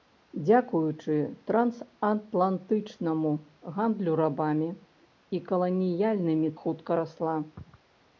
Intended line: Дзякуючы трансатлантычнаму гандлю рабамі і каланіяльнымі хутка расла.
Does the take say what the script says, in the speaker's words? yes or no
yes